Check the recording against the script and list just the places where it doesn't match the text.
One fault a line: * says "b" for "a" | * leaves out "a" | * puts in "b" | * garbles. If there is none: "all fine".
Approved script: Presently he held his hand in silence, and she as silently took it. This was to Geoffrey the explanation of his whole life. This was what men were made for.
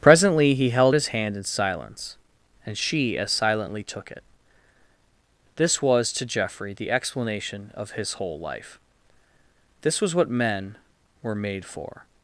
all fine